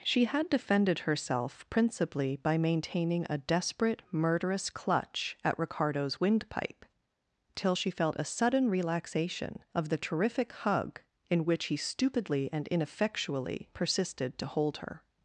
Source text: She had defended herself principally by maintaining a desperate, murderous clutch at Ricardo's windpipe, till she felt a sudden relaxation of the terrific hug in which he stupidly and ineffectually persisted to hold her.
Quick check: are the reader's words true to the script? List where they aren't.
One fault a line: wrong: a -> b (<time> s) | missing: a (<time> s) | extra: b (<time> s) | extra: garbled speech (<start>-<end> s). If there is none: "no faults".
no faults